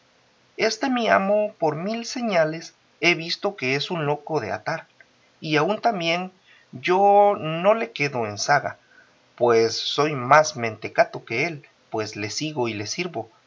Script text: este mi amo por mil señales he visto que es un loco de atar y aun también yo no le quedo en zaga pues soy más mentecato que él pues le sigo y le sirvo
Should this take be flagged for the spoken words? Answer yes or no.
no